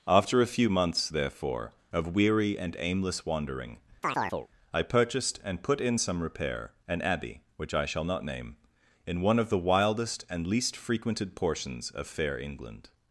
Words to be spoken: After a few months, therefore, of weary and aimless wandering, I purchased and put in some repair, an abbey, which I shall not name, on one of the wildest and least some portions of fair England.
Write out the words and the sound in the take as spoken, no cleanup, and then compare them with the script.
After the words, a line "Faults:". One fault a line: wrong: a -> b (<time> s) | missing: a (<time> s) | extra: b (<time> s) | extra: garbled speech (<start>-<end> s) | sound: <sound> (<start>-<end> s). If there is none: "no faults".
After a few months, therefore, of weary and aimless wandering, I purchased and put in some repair, an abbey, which I shall not name, in one of the wildest and least frequented portions of fair England.
Faults:
sound: chirp (4.0-4.5 s)
wrong: on -> in (9.0 s)
wrong: some -> frequented (10.8 s)